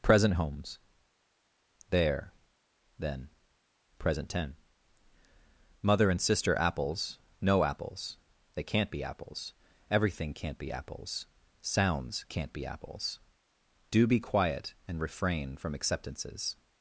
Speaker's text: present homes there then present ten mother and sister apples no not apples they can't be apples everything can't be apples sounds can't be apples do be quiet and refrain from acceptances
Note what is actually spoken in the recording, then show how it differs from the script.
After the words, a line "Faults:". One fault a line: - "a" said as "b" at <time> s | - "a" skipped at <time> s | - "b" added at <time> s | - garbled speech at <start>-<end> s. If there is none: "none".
present homes there then present ten mother and sister apples no apples they can't be apples everything can't be apples sounds can't be apples do be quiet and refrain from acceptances
Faults:
- "not" skipped at 7.6 s